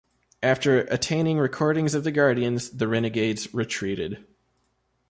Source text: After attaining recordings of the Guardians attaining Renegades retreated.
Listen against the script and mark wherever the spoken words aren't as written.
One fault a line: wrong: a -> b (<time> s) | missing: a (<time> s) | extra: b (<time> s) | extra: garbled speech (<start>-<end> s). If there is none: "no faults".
wrong: attaining -> the (2.7 s)